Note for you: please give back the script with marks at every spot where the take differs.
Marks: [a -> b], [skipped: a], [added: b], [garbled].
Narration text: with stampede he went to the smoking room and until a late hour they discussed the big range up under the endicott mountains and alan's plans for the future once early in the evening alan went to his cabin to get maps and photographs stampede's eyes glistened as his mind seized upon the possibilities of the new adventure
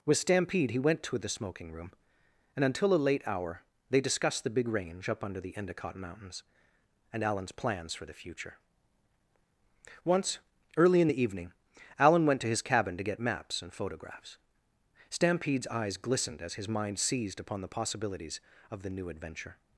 with stampede he went to the smoking room and until a late hour they discussed the big range up under the endicott mountains and alan's plans for the future once early in the evening alan went to his cabin to get maps and photographs stampede's eyes glistened as his mind seized upon the possibilities of the new adventure